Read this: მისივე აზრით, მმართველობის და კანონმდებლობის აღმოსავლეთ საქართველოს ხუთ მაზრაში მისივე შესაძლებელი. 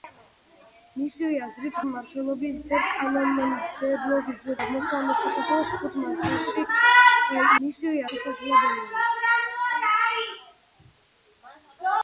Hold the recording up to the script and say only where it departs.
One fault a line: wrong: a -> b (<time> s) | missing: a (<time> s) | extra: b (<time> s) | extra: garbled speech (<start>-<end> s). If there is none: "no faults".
no faults